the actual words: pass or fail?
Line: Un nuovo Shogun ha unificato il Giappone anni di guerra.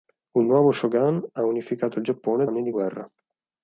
pass